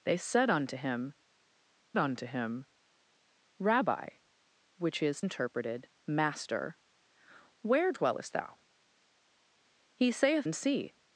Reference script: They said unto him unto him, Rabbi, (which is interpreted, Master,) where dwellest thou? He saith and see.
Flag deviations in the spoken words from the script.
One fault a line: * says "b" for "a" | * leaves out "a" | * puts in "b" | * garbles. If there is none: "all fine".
all fine